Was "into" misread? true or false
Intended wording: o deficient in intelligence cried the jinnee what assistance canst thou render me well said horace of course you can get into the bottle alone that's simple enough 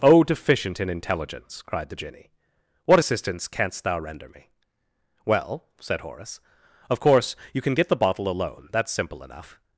true